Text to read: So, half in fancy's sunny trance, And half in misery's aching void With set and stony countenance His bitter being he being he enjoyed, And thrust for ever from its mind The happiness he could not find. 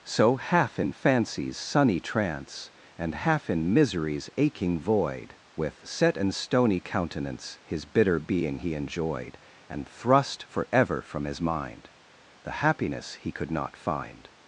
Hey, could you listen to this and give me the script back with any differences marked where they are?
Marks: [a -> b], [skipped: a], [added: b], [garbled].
So, half in fancy's sunny trance, And half in misery's aching void With set and stony countenance His bitter being he [skipped: being he] enjoyed, And thrust for ever from [its -> his] mind The happiness he could not find.